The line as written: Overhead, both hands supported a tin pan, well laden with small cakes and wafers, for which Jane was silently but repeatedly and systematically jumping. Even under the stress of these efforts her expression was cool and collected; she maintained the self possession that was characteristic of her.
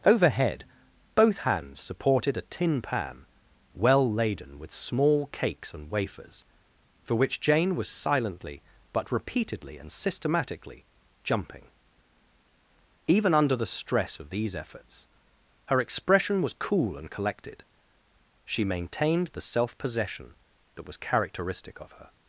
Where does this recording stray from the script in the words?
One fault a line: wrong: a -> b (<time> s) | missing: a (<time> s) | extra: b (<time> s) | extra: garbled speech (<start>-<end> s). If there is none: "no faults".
no faults